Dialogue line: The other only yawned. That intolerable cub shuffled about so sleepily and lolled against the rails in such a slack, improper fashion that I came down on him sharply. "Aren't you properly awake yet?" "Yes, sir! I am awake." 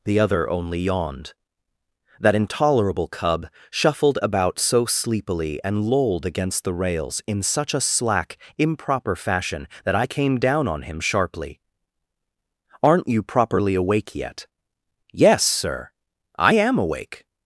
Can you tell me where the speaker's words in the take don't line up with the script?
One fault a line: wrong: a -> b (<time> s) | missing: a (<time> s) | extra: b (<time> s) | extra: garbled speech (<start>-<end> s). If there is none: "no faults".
no faults